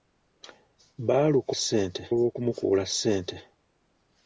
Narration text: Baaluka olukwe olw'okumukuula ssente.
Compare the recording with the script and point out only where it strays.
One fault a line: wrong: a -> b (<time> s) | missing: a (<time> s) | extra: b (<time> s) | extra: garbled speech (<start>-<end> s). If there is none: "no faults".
wrong: olukwe -> ssente (1.6 s)